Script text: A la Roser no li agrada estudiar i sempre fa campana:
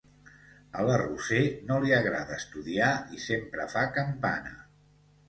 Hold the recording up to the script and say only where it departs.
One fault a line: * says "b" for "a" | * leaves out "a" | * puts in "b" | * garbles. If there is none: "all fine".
all fine